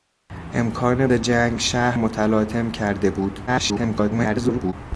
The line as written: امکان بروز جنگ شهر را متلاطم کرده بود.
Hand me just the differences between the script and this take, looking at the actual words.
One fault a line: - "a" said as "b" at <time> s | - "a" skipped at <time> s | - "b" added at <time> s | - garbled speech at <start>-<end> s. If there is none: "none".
- "بروز" skipped at 1.1 s
- "را" skipped at 2.0 s
- garbled speech at 3.5-4.7 s